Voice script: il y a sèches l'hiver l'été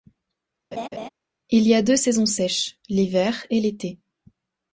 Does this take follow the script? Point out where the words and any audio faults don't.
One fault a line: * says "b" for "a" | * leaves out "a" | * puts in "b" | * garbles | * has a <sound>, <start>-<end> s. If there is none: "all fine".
* has a laugh, 0.7-1.1 s
* puts in "deux saisons"
* puts in "et"